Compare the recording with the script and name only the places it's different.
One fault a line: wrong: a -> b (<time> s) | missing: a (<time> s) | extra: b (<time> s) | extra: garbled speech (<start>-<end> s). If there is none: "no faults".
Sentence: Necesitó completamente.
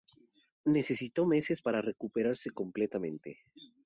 extra: meses para recuperarse (1.3 s)